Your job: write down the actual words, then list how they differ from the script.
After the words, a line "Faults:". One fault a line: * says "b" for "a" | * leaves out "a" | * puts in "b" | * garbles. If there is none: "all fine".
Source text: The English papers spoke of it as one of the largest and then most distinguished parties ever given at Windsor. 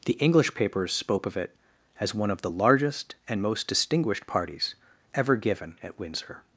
The English papers spoke of it as one of the largest and most distinguished parties ever given at Windsor.
Faults:
* leaves out "then"